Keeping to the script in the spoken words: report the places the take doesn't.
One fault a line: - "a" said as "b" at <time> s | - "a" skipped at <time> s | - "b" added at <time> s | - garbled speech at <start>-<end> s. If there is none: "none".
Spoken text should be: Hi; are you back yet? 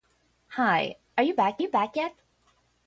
- "you back" added at 1.6 s